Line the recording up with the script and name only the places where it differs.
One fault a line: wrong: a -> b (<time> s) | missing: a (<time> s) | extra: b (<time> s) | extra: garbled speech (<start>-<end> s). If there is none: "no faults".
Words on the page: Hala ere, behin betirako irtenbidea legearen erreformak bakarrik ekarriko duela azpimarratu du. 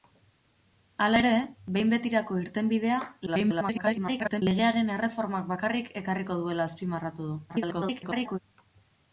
extra: garbled speech (3.3-4.4 s)
extra: garbled speech (7.5-8.4 s)